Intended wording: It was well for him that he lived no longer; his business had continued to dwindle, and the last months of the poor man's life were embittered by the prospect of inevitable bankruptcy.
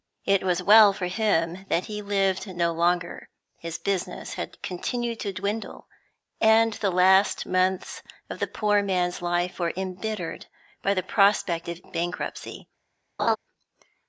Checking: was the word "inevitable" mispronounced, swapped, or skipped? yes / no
yes